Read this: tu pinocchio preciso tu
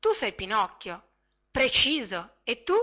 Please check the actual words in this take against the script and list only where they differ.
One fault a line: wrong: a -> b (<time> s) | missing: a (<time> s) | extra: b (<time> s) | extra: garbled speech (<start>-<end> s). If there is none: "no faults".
extra: sei (0.1 s)
extra: e (2.4 s)